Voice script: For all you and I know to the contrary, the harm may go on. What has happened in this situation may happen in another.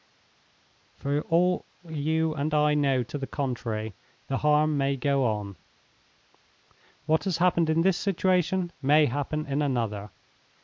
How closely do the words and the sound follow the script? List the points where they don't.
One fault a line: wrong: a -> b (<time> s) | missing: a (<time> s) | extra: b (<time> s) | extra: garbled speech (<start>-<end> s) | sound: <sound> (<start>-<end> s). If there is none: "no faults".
no faults